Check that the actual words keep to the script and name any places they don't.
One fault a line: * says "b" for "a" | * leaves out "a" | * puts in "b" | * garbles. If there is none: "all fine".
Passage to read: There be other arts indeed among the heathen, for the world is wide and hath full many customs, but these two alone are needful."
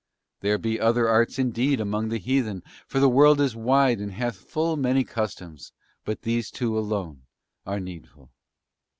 all fine